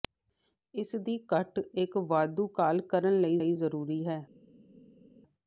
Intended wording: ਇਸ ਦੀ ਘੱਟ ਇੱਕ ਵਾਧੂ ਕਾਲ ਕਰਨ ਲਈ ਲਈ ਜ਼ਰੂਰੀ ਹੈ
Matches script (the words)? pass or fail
pass